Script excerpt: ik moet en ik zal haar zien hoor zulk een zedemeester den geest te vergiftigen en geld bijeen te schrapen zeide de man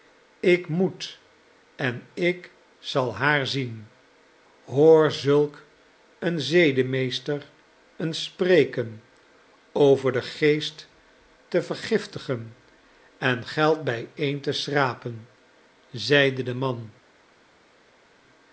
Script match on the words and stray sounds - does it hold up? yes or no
no